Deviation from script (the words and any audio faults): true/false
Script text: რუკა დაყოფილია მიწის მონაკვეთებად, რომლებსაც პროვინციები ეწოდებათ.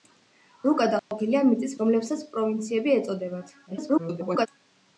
true